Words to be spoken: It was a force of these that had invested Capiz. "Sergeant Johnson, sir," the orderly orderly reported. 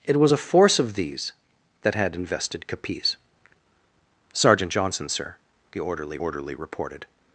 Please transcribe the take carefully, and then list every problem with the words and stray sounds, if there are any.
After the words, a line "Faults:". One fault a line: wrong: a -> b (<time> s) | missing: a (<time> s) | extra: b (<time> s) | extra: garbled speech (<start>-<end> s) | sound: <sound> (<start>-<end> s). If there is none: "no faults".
It was a force of these that had invested Capiz. "Sergeant Johnson, sir," the orderly orderly reported.
Faults:
no faults